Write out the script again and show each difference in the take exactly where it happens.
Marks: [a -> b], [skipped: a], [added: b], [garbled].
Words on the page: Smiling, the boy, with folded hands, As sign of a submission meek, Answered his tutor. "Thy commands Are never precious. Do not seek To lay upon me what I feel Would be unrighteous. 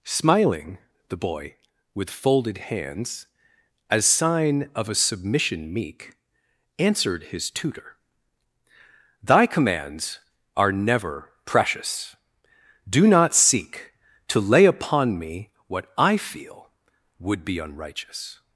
Smiling, the boy, with folded hands, As sign of a submission meek, Answered his tutor. "Thy commands Are never precious. Do not seek To lay upon me what I feel Would be unrighteous.